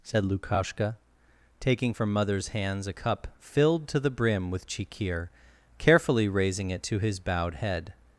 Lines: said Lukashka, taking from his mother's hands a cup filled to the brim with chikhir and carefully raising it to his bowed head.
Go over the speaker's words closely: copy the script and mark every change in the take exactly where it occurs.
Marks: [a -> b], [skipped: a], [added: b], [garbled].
said Lukashka, taking from [skipped: his] mother's hands a cup filled to the brim with chikhir [skipped: and] carefully raising it to his bowed head.